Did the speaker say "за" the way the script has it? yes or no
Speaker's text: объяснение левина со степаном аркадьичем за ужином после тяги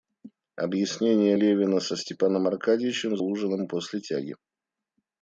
no